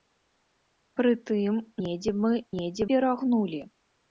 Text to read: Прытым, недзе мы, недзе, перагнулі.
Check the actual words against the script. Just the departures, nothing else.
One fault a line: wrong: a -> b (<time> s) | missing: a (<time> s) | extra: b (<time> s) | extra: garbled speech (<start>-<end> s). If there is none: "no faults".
no faults